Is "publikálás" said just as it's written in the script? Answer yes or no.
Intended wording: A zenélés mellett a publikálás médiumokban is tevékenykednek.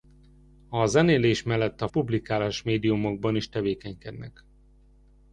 yes